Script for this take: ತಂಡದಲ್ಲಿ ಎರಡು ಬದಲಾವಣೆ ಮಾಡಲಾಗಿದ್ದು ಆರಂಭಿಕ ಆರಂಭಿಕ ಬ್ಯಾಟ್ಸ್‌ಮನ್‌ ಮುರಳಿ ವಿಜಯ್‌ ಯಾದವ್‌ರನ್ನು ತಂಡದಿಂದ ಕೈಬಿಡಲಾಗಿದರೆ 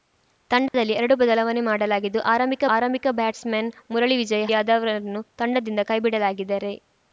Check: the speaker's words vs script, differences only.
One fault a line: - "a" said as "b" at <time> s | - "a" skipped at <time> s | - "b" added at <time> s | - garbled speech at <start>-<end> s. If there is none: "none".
none